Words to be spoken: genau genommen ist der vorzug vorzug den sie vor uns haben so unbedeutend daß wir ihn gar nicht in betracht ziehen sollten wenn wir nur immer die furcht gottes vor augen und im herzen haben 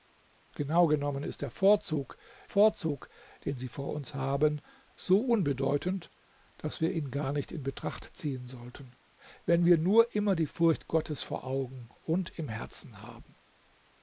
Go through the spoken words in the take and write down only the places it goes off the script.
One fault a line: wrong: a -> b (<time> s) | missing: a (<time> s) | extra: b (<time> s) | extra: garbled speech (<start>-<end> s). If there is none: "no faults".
no faults